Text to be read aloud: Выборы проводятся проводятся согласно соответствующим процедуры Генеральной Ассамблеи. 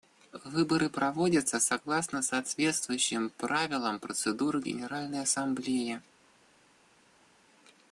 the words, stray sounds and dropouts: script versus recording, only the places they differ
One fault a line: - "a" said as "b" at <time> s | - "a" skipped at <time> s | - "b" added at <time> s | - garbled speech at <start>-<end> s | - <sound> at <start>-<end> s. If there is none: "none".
- "проводятся" skipped at 1.6 s
- "правилам" added at 3.4 s